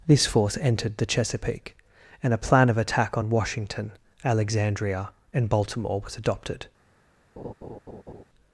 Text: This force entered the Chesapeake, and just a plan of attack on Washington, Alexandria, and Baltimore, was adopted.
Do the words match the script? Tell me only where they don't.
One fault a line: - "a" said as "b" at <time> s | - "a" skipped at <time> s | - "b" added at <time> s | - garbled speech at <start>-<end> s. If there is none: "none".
- "just" skipped at 2.3 s